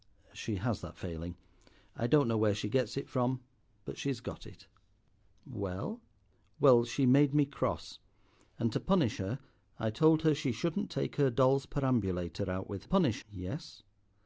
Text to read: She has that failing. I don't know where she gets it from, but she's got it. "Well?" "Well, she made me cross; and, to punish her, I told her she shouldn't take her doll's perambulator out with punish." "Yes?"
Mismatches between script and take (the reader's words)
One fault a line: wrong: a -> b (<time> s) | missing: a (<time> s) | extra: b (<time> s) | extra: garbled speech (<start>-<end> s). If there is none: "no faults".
no faults